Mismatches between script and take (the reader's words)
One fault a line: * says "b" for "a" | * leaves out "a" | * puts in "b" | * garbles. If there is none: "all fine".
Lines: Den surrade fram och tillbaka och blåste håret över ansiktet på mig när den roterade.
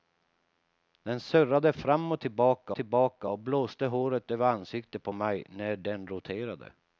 * puts in "tillbaka"